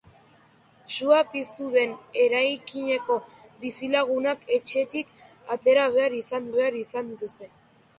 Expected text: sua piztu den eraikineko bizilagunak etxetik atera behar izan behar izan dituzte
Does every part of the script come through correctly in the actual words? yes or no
yes